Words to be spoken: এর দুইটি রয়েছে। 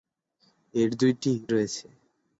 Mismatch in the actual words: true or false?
false